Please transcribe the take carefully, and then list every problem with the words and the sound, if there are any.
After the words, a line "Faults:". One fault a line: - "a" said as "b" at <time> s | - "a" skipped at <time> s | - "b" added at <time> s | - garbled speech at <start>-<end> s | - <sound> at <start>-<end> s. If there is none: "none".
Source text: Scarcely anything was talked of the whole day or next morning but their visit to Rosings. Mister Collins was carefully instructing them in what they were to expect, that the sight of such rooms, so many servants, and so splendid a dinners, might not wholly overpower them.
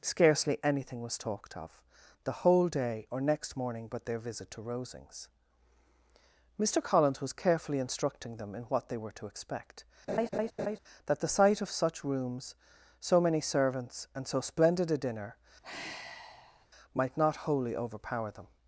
Scarcely anything was talked of the whole day or next morning but their visit to Rosings. Mister Collins was carefully instructing them in what they were to expect, that the sight of such rooms, so many servants, and so splendid a dinner, might not wholly overpower them.
Faults:
- laugh at 10.1-10.8 s
- "dinners" said as "dinner" at 15.0 s
- sigh at 15.6-16.7 s